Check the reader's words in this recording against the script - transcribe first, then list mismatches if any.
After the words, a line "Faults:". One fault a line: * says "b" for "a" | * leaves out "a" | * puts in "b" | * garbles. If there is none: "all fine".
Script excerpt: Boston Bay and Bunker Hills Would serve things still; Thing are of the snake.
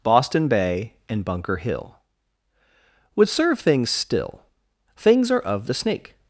Boston Bay and Bunker Hill Would serve things still; Things are of the snake.
Faults:
* says "Hill" for "Hills"
* says "Things" for "Thing"